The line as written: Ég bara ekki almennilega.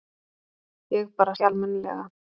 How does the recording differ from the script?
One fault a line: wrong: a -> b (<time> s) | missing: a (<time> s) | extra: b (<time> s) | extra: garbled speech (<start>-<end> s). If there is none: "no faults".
no faults